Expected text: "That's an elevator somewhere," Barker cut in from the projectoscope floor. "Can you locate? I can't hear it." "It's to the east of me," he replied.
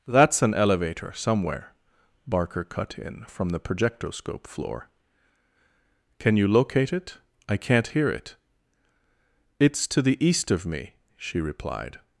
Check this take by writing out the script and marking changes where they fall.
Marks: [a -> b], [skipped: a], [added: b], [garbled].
"That's an elevator somewhere," Barker cut in from the projectoscope floor. "Can you locate? [added: it] I can't hear it." "It's to the east of me," [he -> she] replied.